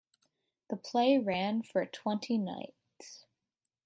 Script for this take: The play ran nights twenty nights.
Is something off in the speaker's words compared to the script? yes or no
yes